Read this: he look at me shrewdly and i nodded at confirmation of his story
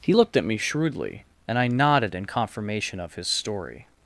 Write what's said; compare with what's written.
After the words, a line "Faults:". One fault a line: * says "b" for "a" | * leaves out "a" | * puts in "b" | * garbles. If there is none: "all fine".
he looked at me shrewdly and i nodded in confirmation of his story
Faults:
* says "looked" for "look"
* says "in" for "at"